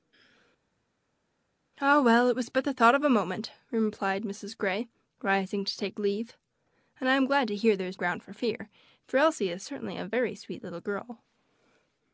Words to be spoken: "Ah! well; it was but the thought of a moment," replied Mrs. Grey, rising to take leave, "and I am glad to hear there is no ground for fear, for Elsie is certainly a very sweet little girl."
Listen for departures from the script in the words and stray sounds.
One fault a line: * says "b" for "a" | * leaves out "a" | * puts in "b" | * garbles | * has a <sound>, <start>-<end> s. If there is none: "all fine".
* leaves out "no"